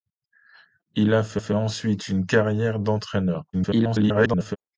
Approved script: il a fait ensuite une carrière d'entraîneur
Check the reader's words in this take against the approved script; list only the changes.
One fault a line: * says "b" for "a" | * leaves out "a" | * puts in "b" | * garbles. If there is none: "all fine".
* puts in "fait"
* garbles